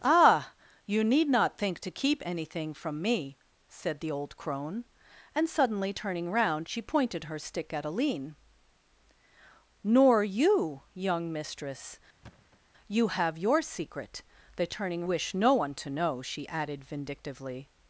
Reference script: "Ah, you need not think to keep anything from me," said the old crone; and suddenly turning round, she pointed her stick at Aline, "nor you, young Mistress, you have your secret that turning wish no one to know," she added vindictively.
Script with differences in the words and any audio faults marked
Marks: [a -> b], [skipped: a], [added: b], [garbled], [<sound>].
"Ah, you need not think to keep anything from me," said the old crone; and suddenly turning round, she pointed her stick at Aline, "nor you, young Mistress, [thud] you have your secret that turning wish no one to know," she added vindictively.